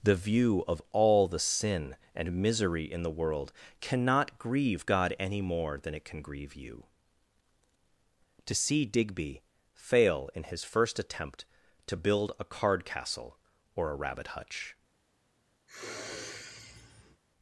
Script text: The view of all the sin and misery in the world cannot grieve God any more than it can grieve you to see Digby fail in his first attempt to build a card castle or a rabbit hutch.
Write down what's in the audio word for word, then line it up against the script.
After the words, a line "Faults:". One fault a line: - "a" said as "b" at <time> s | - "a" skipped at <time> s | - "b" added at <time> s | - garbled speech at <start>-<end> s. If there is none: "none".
The view of all the sin and misery in the world cannot grieve God any more than it can grieve you to see Digby fail in his first attempt to build a card castle or a rabbit hutch.
Faults:
none